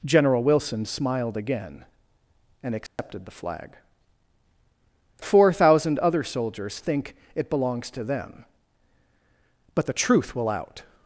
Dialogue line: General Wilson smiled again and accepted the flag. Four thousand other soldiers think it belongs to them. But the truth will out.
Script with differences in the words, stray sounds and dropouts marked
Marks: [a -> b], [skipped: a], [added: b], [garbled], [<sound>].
General Wilson smiled again and accepted [dropout] the flag. Four thousand other soldiers think it belongs to them. But the truth will out.